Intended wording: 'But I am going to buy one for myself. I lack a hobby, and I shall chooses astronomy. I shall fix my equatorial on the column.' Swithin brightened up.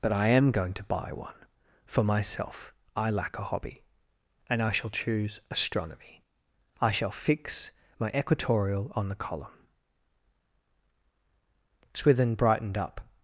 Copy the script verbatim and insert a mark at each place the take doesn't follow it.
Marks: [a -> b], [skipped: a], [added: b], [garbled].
'But I am going to buy one for myself. I lack a hobby, and I shall [chooses -> choose] astronomy. I shall fix my equatorial on the column.' Swithin brightened up.